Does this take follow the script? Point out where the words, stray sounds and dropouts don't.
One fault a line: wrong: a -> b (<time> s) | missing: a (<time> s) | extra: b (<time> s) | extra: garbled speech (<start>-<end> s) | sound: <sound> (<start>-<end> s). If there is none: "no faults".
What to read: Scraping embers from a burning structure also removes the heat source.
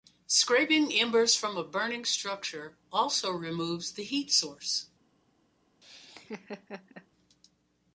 sound: laugh (5.8-7.1 s)